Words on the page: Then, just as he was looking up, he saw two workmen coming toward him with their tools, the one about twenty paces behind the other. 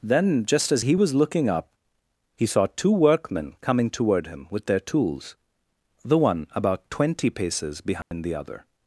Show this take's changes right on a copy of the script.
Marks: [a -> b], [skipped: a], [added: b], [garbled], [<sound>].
Then, just as he was looking up, he saw two workmen coming toward him with their tools, the one about twenty paces behind [dropout] the other.